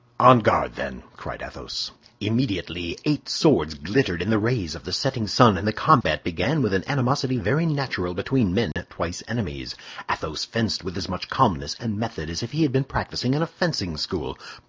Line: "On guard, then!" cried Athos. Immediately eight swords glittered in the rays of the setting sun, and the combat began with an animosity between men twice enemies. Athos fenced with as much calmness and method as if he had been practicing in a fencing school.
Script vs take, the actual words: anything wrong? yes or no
yes